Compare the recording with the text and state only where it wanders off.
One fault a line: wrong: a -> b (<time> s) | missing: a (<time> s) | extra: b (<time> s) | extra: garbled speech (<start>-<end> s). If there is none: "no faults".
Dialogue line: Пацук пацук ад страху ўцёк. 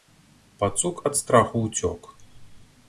missing: пацук (1.0 s)